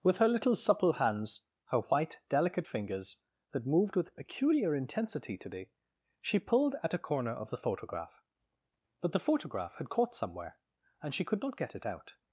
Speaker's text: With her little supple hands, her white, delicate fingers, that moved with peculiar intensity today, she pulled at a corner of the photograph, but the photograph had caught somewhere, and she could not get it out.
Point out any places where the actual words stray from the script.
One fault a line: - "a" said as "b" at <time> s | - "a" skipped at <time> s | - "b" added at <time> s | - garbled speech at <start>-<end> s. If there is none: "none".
none